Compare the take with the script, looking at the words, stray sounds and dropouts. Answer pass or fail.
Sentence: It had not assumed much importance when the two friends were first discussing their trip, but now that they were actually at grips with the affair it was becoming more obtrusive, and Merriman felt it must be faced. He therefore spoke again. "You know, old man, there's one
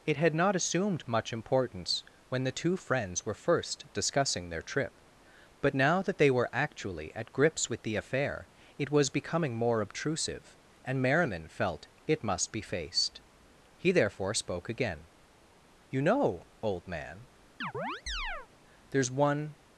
fail